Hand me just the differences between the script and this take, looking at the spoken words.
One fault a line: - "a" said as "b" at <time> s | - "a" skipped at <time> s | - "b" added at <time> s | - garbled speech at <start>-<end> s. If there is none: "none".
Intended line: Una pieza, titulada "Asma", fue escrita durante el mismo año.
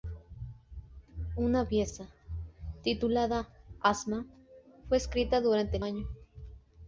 - "mismo" skipped at 5.8 s